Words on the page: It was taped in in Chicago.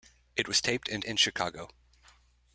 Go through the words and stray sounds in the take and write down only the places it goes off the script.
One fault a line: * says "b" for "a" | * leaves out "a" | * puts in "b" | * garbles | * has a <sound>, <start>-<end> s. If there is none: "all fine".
all fine